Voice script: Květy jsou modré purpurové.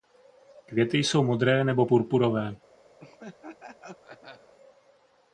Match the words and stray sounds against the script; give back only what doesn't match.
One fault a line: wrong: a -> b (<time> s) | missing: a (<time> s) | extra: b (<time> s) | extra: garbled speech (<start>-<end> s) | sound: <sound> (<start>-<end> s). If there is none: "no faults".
extra: nebo (1.6 s)
sound: laugh (3.0-4.5 s)